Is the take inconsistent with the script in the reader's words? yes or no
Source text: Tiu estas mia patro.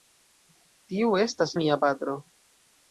no